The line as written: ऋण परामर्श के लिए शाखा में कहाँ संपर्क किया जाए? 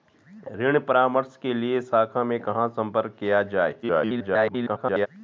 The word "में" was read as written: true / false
true